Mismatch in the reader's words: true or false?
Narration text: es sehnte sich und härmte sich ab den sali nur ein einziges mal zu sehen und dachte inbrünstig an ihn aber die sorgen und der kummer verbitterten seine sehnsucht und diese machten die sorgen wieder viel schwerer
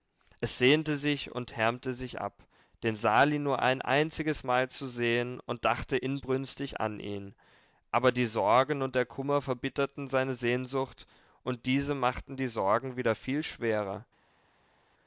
false